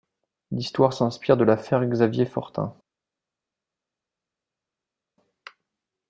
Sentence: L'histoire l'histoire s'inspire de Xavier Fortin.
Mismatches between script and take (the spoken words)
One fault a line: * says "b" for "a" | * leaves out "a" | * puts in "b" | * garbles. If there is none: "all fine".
* leaves out "l'histoire"
* puts in "l'affaire"